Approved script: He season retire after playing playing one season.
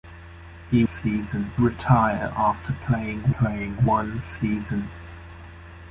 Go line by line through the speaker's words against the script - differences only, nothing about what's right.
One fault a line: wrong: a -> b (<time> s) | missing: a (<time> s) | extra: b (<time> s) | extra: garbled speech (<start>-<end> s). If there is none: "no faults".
no faults